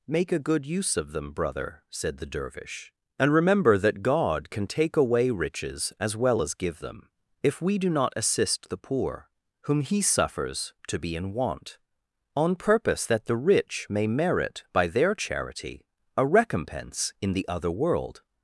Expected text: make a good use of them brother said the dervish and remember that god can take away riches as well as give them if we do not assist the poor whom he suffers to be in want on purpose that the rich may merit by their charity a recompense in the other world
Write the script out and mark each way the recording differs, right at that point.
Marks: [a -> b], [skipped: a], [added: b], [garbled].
make a good use of them brother said the dervish and remember that god can take away riches as well as give them if we do not assist the poor whom he suffers to be in want on purpose that the rich may merit by their charity a recompense in the other world